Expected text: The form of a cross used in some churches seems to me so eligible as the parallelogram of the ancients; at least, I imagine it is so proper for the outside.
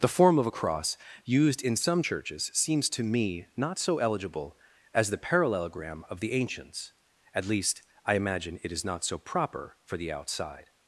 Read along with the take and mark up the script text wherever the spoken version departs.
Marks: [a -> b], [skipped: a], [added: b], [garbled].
The form of a cross used in some churches seems to me [added: not] so eligible as the parallelogram of the ancients; at least, I imagine it is [added: not] so proper for the outside.